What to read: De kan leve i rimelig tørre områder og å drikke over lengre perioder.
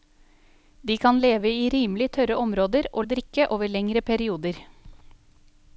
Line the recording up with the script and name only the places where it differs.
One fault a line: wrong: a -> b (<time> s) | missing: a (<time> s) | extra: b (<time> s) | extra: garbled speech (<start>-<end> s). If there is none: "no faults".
no faults